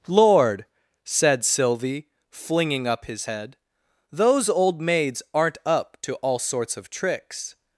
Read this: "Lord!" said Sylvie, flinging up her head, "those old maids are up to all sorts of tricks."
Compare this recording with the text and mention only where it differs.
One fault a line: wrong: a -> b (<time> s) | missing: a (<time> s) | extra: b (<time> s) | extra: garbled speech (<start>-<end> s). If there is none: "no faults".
wrong: her -> his (3.0 s)
wrong: are -> aren't (5.3 s)